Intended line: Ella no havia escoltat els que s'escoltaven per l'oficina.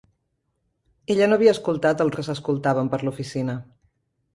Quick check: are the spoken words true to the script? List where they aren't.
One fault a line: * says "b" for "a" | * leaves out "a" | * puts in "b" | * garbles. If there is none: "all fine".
all fine